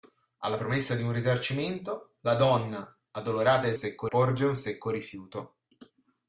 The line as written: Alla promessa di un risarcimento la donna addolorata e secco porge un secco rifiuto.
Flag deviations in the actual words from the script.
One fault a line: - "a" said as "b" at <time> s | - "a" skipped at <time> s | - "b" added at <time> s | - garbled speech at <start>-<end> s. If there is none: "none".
none